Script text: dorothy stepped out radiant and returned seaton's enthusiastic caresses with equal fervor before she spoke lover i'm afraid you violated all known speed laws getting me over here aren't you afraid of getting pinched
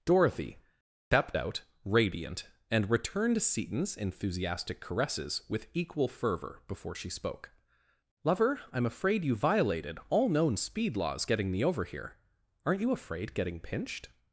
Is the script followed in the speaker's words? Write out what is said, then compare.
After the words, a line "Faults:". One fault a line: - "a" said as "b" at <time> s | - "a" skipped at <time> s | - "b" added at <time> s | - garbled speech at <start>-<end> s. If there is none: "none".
dorothy stepped out radiant and returned seaton's enthusiastic caresses with equal fervor before she spoke lover i'm afraid you violated all known speed laws getting me over here aren't you afraid getting pinched
Faults:
- "of" skipped at 13.3 s